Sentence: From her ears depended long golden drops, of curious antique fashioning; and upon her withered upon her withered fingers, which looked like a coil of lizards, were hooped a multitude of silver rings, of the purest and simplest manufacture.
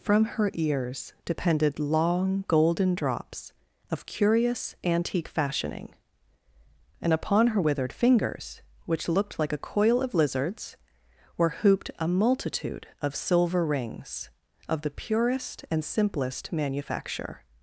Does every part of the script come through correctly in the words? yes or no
no